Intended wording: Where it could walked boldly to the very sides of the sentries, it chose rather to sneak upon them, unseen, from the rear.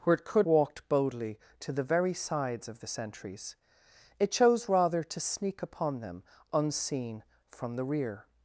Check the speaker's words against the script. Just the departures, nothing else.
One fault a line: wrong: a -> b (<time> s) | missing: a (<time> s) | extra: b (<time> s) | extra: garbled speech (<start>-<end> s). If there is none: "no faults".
no faults